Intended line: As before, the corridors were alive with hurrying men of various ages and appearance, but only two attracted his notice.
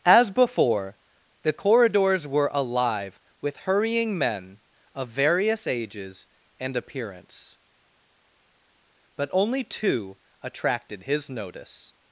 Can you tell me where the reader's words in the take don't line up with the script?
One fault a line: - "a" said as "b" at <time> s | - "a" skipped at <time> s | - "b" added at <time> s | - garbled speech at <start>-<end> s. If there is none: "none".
none